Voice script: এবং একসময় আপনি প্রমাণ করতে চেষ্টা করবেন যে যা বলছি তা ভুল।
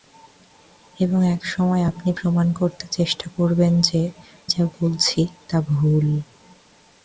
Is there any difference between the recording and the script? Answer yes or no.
no